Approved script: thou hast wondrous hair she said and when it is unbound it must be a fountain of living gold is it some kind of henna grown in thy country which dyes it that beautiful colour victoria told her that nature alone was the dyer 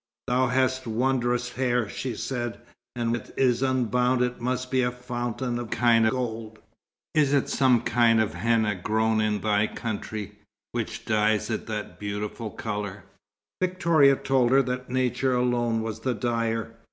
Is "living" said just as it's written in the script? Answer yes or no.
no